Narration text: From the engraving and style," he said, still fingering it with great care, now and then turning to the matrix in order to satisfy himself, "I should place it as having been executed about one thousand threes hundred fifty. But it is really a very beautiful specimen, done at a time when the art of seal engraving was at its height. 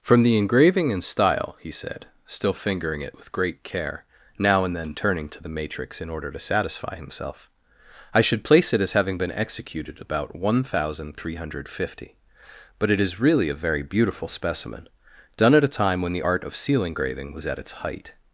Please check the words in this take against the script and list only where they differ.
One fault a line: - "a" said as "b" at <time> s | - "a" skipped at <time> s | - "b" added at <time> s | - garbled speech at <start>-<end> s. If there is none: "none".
- "threes" said as "three" at 11.2 s